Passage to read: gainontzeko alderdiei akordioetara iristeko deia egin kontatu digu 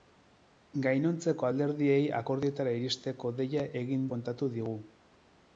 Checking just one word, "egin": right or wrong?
right